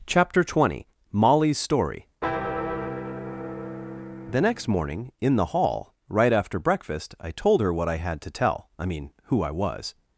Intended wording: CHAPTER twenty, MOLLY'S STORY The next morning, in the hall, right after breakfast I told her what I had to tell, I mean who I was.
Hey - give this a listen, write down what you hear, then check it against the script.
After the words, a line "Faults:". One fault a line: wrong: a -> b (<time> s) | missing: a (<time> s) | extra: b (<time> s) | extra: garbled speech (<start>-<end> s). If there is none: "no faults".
CHAPTER twenty, MOLLY'S STORY The next morning, in the hall, right after breakfast I told her what I had to tell, I mean who I was.
Faults:
no faults